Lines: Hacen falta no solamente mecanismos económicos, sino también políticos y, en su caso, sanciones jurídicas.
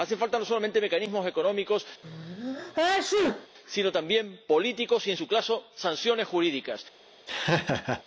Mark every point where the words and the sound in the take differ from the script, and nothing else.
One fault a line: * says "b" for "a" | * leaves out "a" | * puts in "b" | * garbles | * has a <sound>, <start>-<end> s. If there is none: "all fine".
* has a sneeze, 2.0-3.5 s
* has a laugh, 7.3-8.0 s